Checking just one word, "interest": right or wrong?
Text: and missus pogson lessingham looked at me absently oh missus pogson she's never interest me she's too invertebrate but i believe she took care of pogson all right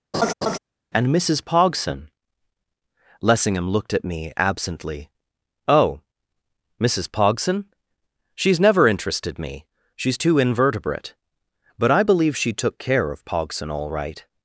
wrong